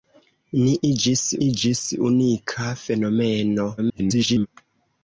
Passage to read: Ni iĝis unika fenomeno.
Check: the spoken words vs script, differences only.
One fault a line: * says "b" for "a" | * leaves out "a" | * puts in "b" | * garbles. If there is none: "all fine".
* puts in "iĝis"
* garbles